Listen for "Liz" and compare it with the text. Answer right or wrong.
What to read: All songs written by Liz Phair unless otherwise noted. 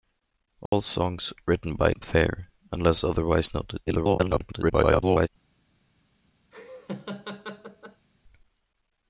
wrong